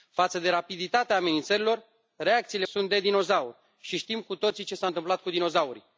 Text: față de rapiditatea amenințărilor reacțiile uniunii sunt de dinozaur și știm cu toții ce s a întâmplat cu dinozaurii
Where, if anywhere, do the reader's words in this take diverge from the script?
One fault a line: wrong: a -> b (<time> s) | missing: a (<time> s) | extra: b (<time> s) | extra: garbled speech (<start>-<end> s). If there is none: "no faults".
missing: uniunii (2.6 s)